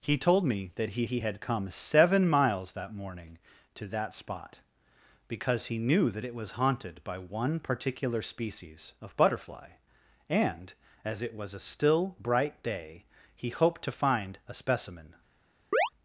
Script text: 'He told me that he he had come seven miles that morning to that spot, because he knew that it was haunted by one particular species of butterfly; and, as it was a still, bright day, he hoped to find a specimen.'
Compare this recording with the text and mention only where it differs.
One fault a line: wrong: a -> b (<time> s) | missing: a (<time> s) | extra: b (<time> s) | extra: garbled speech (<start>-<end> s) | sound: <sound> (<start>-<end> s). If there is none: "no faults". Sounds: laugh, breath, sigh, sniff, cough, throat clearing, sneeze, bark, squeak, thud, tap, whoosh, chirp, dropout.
sound: chirp (15.7-15.9 s)